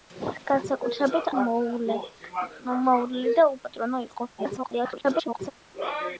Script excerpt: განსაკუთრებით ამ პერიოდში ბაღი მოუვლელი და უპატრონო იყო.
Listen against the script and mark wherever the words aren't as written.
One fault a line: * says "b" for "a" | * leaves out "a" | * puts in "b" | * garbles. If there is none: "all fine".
* leaves out "ამ პერიოდში ბაღი"
* garbles